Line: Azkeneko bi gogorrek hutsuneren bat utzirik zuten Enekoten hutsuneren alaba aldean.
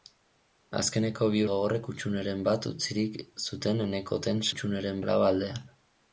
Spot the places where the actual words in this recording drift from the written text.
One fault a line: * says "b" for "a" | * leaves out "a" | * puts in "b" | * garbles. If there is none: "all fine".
all fine